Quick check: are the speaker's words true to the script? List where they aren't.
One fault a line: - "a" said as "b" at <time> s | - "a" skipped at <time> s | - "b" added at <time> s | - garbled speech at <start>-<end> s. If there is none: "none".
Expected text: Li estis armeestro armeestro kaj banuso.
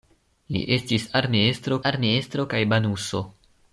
none